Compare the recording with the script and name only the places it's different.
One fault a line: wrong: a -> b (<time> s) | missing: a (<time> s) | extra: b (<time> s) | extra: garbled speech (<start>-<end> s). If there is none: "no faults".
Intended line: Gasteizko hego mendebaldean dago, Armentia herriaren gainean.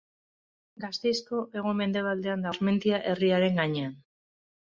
missing: dago (2.5 s)